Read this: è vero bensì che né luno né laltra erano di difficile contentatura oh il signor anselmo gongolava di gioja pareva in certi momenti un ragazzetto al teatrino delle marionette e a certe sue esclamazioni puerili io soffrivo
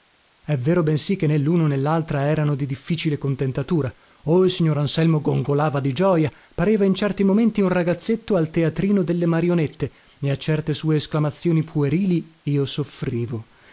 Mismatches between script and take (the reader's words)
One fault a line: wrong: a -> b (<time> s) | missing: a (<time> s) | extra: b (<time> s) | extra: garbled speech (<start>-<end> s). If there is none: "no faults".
no faults